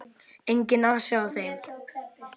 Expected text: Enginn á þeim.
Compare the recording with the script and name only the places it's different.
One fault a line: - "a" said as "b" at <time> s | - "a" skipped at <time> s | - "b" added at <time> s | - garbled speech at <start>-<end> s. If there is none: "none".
- "asi" added at 0.9 s